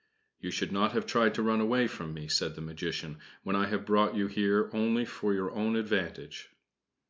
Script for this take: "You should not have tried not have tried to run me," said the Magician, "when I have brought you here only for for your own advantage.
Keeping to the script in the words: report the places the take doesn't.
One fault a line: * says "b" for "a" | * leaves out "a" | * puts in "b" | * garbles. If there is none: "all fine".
* says "to run away from" for "not have tried to run"
* leaves out "for"